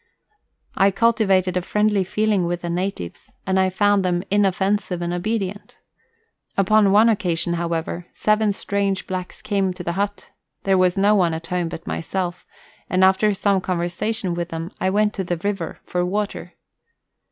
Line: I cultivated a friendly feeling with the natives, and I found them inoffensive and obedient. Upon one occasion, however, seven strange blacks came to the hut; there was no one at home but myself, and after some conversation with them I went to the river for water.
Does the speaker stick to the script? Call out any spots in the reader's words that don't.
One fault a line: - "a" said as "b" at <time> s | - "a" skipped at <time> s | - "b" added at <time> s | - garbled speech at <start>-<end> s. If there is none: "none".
none